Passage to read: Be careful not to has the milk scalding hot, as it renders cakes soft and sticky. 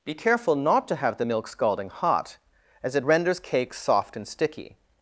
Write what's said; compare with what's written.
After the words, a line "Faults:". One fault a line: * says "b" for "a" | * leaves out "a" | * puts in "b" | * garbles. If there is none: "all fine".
Be careful not to have the milk scalding hot, as it renders cakes soft and sticky.
Faults:
* says "have" for "has"